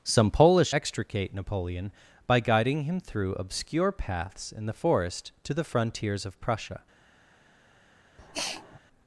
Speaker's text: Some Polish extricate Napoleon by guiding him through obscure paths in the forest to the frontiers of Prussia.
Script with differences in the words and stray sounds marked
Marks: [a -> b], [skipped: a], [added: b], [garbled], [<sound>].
Some Polish extricate Napoleon by guiding him through obscure paths in the forest to the frontiers of Prussia. [sniff]